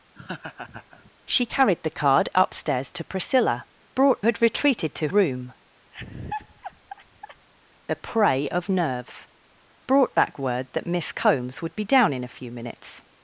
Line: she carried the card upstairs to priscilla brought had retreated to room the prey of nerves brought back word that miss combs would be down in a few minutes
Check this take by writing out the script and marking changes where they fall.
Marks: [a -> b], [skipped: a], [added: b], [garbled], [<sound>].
[laugh] she carried the card upstairs to priscilla brought had retreated to room [laugh] the prey of nerves brought back word that miss combs would be down in a few minutes